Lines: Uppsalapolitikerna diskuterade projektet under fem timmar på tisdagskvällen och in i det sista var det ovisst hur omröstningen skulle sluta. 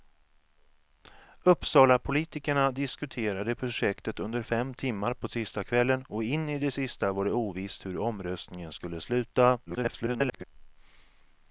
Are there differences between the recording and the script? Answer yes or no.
yes